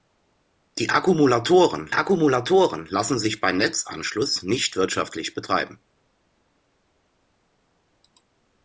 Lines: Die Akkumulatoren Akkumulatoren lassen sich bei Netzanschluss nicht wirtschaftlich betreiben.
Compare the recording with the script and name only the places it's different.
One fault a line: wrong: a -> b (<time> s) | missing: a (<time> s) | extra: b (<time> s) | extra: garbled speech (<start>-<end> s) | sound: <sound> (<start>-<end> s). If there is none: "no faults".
no faults